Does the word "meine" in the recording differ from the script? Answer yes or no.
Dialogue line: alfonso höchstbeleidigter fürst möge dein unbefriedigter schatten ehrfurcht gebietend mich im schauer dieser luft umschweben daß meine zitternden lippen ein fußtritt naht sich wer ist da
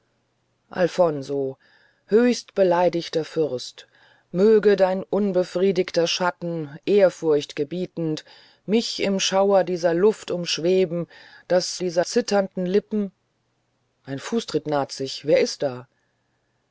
yes